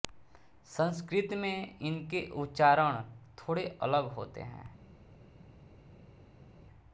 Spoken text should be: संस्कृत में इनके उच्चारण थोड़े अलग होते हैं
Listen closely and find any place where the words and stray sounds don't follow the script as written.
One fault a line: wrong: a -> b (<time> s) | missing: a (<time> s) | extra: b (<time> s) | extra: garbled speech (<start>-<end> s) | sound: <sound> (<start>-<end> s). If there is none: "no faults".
no faults